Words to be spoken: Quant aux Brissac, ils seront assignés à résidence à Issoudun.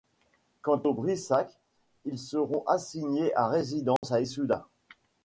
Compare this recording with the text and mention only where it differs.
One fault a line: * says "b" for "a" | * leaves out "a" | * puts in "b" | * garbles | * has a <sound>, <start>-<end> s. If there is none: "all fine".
* has a dropout, 4.0-4.0 s